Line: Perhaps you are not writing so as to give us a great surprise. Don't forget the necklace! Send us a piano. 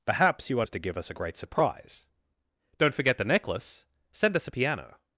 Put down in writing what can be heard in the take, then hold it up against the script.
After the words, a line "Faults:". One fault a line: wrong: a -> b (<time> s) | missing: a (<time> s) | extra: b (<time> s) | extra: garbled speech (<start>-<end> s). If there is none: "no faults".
Perhaps you are as to give us a great surprise. Don't forget the necklace! Send us a piano.
Faults:
missing: not writing so (0.7 s)